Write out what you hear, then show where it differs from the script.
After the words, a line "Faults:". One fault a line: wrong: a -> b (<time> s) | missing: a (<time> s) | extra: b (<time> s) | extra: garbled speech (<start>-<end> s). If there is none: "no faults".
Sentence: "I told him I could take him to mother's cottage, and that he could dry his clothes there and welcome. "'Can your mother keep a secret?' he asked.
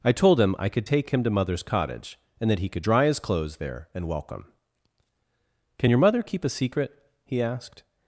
"I told him I could take him to mother's cottage, and that he could dry his clothes there and welcome. "'Can your mother keep a secret?' he asked.
Faults:
no faults